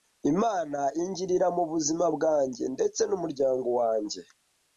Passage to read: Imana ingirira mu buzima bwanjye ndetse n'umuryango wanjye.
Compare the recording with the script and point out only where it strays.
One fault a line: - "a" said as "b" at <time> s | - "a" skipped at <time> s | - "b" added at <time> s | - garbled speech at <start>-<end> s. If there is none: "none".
none